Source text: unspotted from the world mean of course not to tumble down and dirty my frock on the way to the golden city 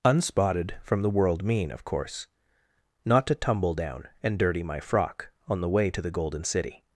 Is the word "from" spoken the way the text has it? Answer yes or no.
yes